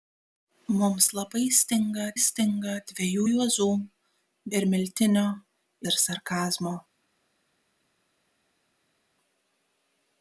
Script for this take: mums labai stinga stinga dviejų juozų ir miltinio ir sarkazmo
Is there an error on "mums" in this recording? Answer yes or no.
no